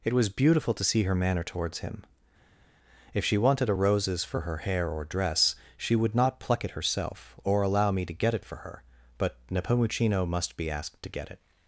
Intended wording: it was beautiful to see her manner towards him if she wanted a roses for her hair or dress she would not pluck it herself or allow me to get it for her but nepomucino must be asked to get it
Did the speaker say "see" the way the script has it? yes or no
yes